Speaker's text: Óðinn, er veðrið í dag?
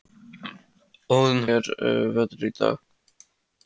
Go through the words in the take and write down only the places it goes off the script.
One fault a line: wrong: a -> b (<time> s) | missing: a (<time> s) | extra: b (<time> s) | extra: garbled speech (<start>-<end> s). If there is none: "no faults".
no faults